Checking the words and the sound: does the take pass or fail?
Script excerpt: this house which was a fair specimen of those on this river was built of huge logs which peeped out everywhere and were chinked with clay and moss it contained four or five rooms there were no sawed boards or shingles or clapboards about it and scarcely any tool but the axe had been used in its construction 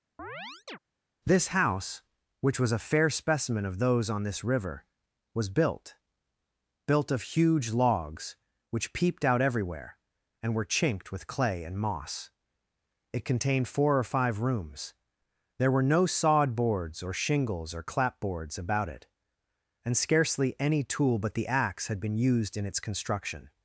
fail